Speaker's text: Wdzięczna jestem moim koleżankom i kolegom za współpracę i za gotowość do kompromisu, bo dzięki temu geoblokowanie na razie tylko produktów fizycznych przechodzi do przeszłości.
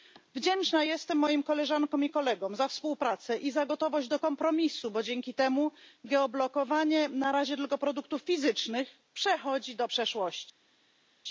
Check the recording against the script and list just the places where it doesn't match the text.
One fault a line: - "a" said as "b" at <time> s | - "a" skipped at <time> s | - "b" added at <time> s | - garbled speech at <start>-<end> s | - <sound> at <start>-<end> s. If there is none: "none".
none